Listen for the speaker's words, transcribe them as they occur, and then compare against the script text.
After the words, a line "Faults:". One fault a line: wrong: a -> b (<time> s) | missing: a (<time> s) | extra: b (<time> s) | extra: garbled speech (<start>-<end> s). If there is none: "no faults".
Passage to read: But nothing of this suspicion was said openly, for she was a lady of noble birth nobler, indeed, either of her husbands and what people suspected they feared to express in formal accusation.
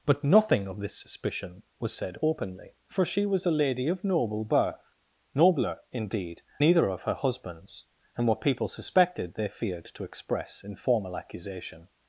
But nothing of this suspicion was said openly, for she was a lady of noble birth nobler, indeed, either of her husbands and what people suspected they feared to express in formal accusation.
Faults:
no faults